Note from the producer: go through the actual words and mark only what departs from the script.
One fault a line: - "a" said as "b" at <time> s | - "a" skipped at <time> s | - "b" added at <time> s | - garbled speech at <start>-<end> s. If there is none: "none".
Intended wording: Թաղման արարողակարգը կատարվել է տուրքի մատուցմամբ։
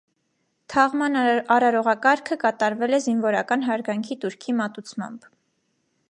- "զինվորական հարգանքի" added at 3.1 s